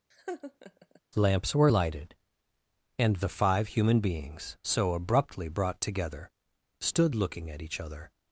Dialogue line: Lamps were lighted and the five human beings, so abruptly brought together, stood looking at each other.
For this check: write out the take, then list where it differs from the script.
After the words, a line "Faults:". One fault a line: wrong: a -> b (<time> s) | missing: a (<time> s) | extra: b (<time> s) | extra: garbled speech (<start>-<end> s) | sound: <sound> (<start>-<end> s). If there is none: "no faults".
Lamps were lighted and the five human beings, so abruptly brought together, stood looking at each other.
Faults:
sound: laugh (0.1-1.0 s)